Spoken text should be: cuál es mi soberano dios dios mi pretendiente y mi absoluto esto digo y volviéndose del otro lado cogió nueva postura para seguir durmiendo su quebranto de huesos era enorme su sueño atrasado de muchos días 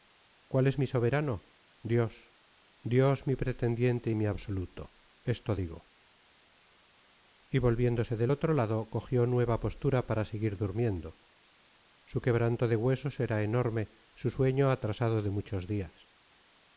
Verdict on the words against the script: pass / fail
pass